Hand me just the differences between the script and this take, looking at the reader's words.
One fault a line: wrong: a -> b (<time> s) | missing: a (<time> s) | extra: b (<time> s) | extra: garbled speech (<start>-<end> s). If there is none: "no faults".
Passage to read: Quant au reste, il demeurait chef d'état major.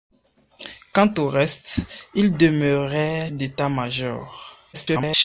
missing: chef (3.3 s)
extra: garbled speech (4.7-5.2 s)